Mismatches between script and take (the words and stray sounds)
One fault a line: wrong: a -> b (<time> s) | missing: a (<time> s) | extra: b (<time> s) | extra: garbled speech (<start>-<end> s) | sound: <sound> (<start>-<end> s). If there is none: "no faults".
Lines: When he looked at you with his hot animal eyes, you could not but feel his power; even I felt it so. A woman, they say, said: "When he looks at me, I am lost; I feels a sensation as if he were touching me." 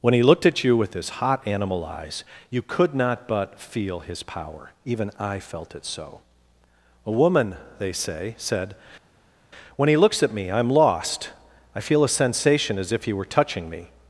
wrong: feels -> feel (11.8 s)